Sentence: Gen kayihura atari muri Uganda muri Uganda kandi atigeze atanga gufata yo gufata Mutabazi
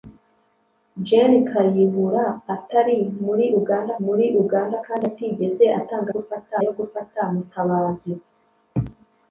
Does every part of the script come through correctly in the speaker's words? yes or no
yes